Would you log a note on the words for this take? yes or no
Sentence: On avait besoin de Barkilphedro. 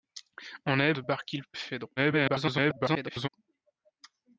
yes